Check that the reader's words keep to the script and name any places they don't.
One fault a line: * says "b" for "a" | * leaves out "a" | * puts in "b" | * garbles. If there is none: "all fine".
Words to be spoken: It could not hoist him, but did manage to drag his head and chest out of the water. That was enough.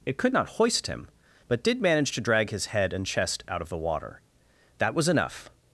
all fine